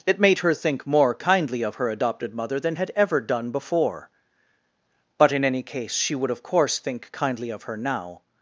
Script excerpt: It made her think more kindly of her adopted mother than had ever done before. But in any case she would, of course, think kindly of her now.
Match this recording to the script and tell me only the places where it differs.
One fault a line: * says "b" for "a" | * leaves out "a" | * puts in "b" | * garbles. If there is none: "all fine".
all fine